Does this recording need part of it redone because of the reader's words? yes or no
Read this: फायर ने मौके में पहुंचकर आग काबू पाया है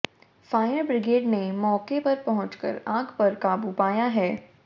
yes